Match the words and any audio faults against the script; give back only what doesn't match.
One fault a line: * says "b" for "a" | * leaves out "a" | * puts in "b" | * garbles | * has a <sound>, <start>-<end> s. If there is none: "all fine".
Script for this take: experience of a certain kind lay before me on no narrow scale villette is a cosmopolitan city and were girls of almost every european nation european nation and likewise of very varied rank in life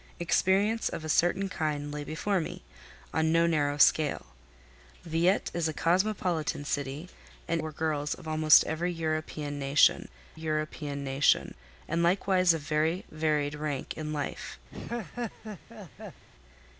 * has a laugh, 14.7-16.2 s